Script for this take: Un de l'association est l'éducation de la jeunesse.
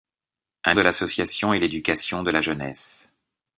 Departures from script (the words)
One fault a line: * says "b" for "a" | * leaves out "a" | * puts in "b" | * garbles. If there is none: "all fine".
all fine